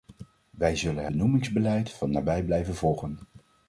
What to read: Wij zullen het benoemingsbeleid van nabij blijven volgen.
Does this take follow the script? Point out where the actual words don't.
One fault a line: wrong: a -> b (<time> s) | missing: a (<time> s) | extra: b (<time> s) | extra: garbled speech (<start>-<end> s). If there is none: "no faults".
missing: het (1.1 s)